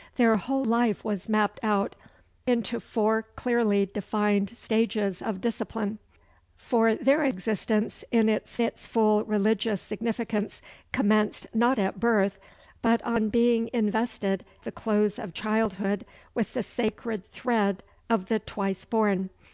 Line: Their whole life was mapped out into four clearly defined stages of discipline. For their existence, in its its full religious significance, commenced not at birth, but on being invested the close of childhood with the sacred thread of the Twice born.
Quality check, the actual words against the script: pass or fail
pass